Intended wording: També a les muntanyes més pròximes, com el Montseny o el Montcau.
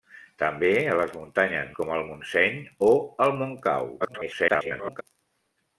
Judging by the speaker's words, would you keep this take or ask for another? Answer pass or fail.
fail